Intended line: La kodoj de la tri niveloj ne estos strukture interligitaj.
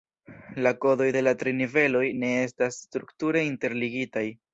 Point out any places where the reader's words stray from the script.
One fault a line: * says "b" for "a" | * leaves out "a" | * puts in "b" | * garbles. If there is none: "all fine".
* says "estas" for "estos"